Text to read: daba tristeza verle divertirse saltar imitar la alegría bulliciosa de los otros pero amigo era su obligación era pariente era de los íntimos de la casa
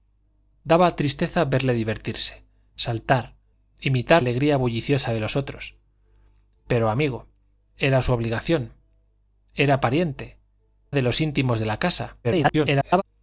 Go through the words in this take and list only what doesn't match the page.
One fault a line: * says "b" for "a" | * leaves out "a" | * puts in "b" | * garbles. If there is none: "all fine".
* leaves out "la"
* leaves out "era"
* garbles